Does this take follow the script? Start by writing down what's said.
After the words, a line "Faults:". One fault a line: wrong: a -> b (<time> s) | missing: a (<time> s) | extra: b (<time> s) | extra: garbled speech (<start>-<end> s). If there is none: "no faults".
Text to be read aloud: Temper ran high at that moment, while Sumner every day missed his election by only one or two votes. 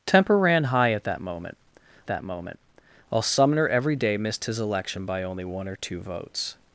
Temper ran high at that moment that moment, while Sumner every day missed his election by only one or two votes.
Faults:
extra: that moment (2.1 s)